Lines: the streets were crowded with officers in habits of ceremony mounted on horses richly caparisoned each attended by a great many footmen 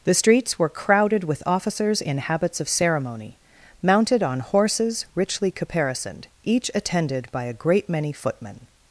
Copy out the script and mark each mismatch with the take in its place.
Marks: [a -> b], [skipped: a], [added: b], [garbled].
the streets were crowded with officers in habits of ceremony mounted on horses richly caparisoned each attended by a great many footmen